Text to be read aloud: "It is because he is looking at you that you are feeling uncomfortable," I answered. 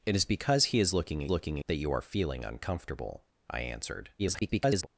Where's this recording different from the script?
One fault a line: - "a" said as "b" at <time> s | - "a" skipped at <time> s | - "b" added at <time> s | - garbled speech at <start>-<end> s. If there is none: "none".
- "you" said as "looking" at 1.3 s
- garbled speech at 4.2-4.9 s